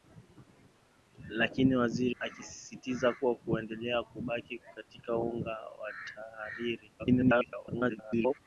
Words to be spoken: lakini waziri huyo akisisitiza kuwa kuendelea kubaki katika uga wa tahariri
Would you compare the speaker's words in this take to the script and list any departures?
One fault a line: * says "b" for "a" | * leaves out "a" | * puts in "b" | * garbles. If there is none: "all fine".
* leaves out "huyo"
* garbles